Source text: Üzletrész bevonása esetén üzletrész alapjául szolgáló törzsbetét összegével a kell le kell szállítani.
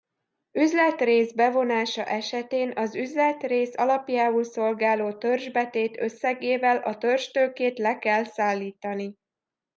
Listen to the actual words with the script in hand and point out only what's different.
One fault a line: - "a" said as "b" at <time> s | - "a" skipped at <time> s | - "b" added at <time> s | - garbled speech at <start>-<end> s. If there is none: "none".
- "az" added at 2.8 s
- "kell" said as "törzstőkét" at 7.0 s